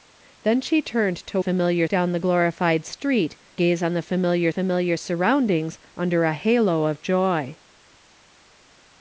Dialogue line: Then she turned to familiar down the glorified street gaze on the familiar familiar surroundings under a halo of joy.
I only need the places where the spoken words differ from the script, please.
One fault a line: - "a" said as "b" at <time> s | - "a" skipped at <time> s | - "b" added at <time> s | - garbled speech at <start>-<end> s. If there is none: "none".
none